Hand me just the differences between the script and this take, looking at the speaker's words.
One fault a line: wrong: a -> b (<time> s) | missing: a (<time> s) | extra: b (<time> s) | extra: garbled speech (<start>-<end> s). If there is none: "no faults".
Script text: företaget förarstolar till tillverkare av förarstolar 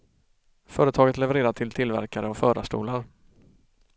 wrong: förarstolar -> levererar (1.2 s)